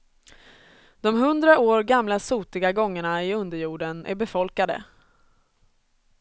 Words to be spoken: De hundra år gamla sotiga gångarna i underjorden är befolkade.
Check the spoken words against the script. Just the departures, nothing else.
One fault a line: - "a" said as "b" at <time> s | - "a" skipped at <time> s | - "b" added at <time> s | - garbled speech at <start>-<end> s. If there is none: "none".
none